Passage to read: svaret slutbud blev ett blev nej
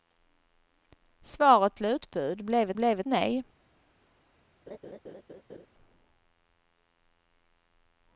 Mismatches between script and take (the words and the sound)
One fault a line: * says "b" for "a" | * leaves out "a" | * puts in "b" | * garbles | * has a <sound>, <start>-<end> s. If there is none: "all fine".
* has a laugh, 4.7-5.7 s